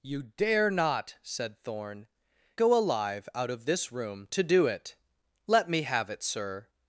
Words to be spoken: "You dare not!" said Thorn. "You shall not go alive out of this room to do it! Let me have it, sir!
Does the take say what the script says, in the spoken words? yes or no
no